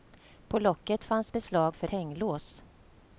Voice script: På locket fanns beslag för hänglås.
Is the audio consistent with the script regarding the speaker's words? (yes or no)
yes